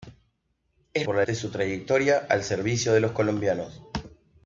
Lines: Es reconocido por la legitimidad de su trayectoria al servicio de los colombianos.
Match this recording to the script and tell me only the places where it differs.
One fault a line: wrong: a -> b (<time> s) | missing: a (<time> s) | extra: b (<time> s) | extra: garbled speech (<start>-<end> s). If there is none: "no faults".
missing: reconocido (1.1 s)
missing: legitimidad (1.3 s)